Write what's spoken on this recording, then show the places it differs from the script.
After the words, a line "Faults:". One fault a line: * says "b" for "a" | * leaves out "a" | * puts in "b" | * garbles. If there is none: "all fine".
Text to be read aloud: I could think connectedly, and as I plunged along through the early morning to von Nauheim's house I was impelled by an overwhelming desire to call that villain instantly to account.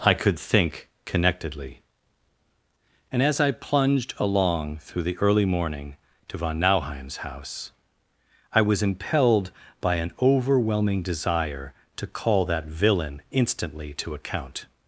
I could think connectedly, and as I plunged along through the early morning to von Nauheim's house I was impelled by an overwhelming desire to call that villain instantly to account.
Faults:
all fine